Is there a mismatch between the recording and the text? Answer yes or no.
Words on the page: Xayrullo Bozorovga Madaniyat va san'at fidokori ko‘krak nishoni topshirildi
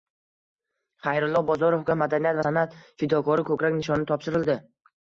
no